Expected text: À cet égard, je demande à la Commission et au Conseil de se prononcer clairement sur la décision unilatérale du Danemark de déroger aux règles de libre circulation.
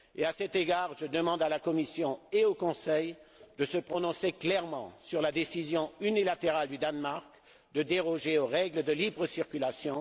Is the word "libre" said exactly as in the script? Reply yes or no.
yes